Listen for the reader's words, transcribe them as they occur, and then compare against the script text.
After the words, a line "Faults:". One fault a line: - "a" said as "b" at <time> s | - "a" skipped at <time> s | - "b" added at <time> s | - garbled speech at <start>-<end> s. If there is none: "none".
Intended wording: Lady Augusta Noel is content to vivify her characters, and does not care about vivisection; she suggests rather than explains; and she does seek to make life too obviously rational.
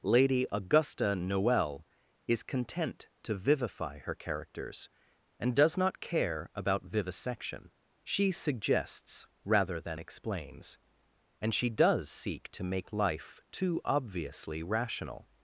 Lady Augusta Noel is content to vivify her characters, and does not care about vivisection; she suggests rather than explains; and she does seek to make life too obviously rational.
Faults:
none